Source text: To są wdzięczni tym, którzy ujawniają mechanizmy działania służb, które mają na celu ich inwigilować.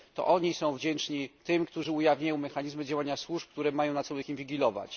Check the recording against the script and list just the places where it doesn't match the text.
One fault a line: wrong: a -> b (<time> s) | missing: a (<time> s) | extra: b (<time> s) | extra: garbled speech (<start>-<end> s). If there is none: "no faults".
extra: oni (0.3 s)